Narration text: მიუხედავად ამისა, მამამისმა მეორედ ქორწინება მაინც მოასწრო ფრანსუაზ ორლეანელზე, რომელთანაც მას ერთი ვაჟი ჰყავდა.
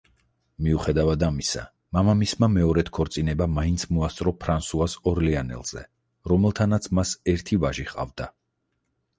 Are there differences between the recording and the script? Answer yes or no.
no